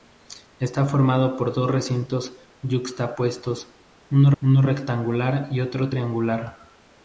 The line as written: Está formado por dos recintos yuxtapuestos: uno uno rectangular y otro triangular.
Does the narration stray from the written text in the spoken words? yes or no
no